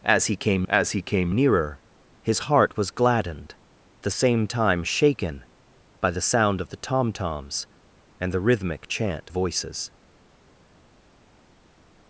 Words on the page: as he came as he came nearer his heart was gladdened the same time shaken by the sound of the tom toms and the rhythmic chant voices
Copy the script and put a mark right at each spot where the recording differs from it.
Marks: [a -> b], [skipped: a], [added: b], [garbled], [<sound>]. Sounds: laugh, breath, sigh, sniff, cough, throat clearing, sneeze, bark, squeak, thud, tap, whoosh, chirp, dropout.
as he came as he came nearer his heart was gladdened the same time shaken by the sound of the tom toms and the rhythmic chant voices